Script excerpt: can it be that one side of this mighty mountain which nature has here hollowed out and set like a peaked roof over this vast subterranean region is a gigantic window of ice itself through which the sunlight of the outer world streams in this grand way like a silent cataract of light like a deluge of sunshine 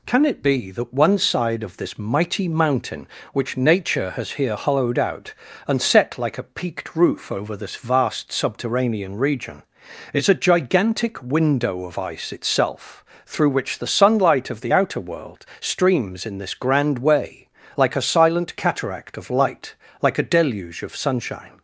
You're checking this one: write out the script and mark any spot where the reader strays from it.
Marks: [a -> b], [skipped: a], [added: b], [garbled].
can it be that one side of this mighty mountain which nature has here hollowed out and set like a peaked roof over this vast subterranean region is a gigantic window of ice itself through which the sunlight of the outer world streams in this grand way like a silent cataract of light like a deluge of sunshine